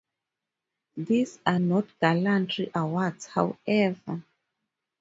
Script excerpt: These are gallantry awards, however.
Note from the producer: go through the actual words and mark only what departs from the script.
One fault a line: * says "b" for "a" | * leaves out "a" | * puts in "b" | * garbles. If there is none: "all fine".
* puts in "not"